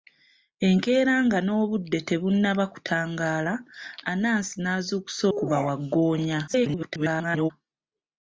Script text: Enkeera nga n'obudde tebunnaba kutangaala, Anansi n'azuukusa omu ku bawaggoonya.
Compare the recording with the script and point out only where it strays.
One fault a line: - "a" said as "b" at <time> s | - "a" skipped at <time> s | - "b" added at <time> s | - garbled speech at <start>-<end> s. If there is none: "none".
- "omu" skipped at 5.2 s
- garbled speech at 6.5-7.5 s